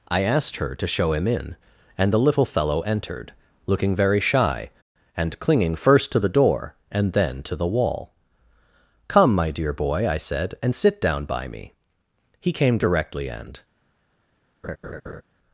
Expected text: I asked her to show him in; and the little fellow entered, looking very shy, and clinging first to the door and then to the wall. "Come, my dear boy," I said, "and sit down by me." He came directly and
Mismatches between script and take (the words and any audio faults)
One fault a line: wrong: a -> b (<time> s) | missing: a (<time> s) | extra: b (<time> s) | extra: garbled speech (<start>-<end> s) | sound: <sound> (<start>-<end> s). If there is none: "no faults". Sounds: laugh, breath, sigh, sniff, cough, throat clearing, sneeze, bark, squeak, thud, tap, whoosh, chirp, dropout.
sound: laugh (14.6-15.2 s)